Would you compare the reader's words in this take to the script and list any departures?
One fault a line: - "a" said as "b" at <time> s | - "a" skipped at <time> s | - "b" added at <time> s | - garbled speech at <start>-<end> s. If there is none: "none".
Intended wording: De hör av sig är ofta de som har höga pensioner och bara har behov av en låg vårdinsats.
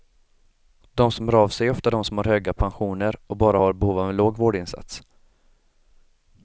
- "som" added at 1.1 s